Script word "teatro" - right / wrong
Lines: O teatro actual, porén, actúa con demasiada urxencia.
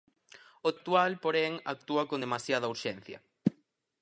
wrong